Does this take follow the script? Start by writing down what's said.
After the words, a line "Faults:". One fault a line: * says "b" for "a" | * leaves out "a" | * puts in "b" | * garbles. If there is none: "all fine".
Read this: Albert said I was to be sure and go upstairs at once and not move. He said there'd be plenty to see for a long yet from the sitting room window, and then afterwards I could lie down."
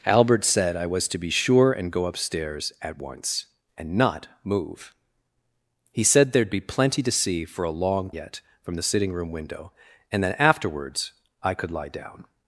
Albert said I was to be sure and go upstairs at once and not move. He said there'd be plenty to see for a long yet from the sitting room window, and then afterwards I could lie down."
Faults:
all fine